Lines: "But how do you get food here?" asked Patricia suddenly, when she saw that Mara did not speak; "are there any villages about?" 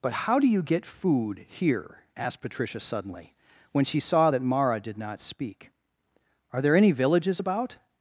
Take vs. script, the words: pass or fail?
pass